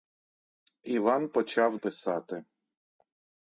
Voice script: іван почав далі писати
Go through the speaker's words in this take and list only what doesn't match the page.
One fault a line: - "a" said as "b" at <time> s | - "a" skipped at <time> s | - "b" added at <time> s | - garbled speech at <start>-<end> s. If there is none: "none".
- "далі" skipped at 1.8 s